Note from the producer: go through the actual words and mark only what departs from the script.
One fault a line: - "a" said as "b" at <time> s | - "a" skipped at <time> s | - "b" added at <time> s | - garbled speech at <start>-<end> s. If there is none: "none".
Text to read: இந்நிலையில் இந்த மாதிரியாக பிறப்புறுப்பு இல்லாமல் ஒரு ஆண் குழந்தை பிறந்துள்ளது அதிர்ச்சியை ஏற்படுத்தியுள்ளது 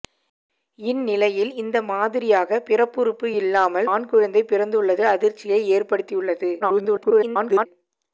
- "ஒரு" skipped at 3.9 s
- garbled speech at 6.6-7.7 s